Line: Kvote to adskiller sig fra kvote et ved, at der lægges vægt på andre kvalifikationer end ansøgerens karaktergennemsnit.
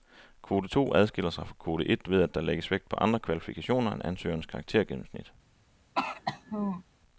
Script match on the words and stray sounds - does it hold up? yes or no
no